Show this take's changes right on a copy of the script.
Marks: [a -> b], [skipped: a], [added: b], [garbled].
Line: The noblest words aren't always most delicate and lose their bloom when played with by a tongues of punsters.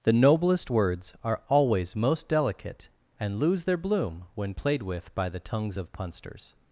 The noblest words [aren't -> are] always most delicate and lose their bloom when played with by [a -> the] tongues of punsters.